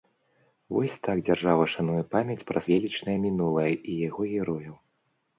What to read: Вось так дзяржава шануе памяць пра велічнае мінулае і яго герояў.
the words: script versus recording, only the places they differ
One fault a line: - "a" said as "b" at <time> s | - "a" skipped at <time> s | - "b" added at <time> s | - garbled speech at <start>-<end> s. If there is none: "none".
none